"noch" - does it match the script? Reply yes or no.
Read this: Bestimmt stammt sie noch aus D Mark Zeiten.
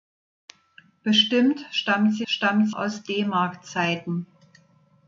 no